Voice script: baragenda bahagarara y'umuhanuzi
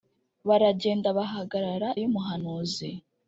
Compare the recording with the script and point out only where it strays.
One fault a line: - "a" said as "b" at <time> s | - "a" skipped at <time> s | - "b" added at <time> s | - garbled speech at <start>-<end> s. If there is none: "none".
none